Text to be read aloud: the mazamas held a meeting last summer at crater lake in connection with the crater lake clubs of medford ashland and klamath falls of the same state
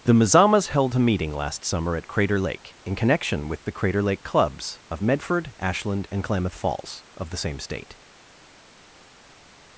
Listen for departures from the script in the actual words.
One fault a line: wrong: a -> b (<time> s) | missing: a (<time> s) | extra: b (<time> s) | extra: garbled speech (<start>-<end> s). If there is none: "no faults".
no faults